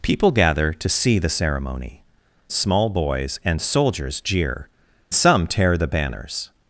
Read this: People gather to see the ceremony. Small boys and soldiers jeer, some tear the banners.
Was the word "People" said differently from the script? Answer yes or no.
no